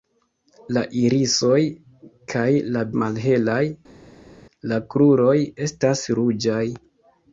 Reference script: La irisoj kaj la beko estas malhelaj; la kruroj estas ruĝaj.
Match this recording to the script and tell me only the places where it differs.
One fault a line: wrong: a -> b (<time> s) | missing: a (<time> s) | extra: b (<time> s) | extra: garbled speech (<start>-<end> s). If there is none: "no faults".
missing: beko estas (2.8 s)